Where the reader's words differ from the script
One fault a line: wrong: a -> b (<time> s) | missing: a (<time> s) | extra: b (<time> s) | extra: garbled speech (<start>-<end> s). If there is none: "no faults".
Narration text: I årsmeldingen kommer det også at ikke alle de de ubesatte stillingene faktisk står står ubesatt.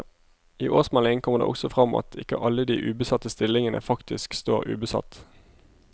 extra: frem (1.7 s)
missing: de (2.8 s)
missing: står (4.7 s)